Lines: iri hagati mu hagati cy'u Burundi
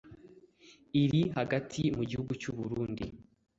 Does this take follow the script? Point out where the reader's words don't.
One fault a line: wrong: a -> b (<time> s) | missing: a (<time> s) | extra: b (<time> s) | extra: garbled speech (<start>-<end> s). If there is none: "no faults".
wrong: hagati -> gihugu (2.1 s)